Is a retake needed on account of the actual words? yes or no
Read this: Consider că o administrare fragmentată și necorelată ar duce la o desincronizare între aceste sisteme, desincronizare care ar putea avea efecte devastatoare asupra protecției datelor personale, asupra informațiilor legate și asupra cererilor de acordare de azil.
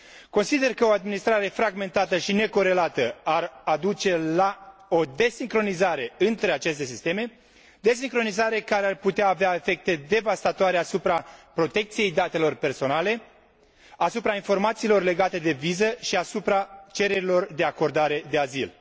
yes